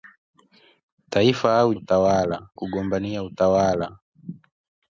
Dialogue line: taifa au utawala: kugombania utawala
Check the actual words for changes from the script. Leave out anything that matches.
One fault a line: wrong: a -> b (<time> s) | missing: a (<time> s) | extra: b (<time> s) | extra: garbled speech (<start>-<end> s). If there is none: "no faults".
no faults